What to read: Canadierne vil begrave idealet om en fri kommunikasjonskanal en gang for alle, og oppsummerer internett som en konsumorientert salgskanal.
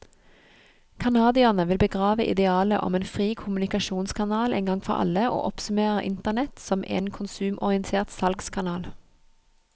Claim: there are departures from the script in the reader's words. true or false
false